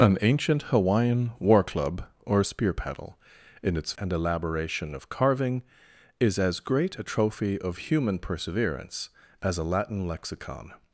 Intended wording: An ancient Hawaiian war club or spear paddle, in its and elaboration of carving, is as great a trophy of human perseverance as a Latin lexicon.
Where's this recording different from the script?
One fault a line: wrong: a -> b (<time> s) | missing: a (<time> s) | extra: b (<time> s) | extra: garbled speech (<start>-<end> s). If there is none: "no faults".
no faults